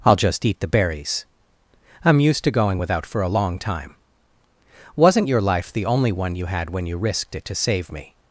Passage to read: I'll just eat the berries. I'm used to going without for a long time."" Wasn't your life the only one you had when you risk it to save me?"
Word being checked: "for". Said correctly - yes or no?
yes